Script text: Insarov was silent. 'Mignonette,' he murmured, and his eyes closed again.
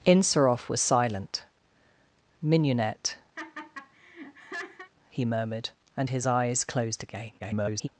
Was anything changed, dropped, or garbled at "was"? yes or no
no